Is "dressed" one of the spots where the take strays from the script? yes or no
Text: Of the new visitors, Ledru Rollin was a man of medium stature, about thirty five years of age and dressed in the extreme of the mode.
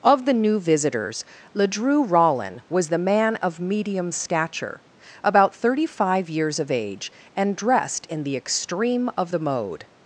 no